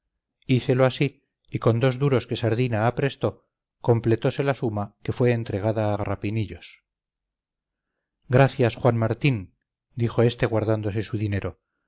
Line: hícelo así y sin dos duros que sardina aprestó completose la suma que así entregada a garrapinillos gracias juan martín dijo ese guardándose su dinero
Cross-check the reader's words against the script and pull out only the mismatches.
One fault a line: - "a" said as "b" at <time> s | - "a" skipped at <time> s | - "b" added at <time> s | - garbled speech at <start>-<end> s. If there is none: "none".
- "sin" said as "con" at 1.6 s
- "así" said as "fue" at 5.1 s
- "ese" said as "este" at 10.2 s